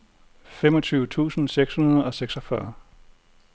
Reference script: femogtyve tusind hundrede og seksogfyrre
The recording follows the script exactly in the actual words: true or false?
false